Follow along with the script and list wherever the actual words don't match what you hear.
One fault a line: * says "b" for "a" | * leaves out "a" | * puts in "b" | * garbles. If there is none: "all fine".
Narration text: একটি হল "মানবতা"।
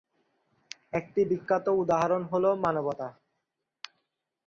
* puts in "বিখ্যাত উদাহরণ"